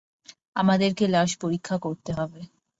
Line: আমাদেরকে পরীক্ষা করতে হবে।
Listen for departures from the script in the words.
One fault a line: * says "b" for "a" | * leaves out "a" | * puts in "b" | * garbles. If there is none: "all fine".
* puts in "লাশ"